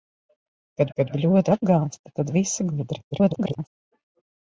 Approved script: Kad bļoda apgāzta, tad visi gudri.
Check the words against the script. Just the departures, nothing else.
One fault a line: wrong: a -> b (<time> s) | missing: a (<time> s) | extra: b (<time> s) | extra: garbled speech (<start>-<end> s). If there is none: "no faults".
extra: kad (1.0 s)
extra: garbled speech (3.1-3.7 s)